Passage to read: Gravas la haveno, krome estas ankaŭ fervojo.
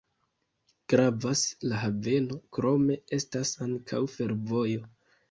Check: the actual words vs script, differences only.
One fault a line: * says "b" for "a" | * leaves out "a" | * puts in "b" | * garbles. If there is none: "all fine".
all fine